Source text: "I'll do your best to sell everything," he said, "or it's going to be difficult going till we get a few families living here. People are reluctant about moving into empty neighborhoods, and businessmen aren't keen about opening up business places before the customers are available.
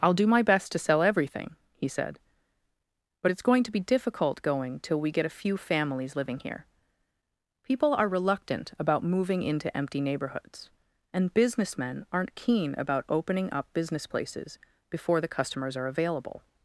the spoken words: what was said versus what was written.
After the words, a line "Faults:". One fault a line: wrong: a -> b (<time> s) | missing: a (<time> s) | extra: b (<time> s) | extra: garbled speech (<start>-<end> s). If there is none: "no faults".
"I'll do my best to sell everything," he said, "but it's going to be difficult going till we get a few families living here. People are reluctant about moving into empty neighborhoods, and businessmen aren't keen about opening up business places before the customers are available.
Faults:
wrong: your -> my (0.2 s)
wrong: or -> but (3.2 s)